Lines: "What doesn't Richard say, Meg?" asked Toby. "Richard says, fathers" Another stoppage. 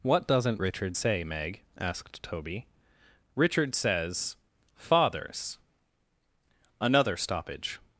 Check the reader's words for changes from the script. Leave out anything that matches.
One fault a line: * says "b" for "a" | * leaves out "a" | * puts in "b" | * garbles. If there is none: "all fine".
all fine